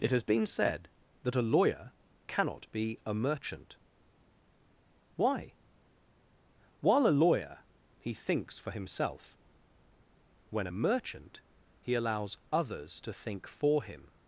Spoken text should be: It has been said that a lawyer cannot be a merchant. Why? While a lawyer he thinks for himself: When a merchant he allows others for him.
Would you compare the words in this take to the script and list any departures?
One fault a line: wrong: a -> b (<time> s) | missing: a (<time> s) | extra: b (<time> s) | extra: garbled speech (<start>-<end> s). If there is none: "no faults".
extra: to think (13.0 s)